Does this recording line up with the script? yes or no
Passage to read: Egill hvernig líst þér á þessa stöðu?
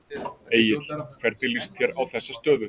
yes